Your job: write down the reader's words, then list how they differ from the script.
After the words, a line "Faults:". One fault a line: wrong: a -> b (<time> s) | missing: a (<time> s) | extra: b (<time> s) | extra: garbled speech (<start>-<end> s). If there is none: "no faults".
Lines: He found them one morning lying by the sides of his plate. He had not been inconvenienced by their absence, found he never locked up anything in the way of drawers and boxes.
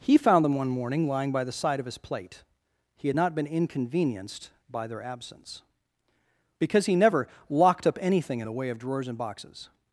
He found them one morning lying by the side of his plate. He had not been inconvenienced by their absence, because he never locked up anything in the way of drawers and boxes.
Faults:
wrong: sides -> side (1.5 s)
wrong: found -> because (6.6 s)